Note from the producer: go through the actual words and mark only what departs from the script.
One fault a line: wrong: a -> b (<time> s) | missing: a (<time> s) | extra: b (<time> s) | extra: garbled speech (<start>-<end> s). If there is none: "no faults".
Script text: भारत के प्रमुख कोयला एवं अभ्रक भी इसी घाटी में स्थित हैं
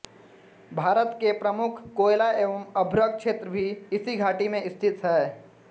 extra: क्षेत्र (3.2 s)